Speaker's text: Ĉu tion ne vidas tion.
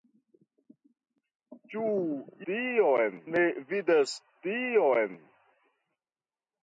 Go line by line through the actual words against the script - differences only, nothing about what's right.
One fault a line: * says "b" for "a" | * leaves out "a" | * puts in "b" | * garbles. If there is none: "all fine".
all fine